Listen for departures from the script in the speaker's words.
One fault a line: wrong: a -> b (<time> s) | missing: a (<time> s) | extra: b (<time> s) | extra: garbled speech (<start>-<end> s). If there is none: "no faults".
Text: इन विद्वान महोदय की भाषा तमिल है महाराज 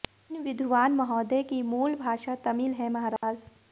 extra: मूल (1.6 s)